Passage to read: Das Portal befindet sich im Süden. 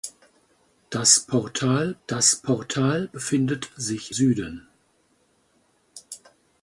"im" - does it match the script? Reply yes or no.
no